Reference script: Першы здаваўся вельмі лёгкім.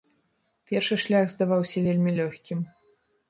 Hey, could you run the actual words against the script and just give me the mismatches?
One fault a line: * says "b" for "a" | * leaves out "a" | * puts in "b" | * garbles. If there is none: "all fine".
* puts in "шлях"